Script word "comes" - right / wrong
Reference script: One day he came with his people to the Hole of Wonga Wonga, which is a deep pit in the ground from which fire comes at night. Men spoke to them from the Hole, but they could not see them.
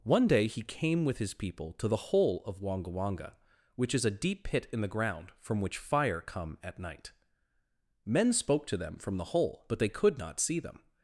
wrong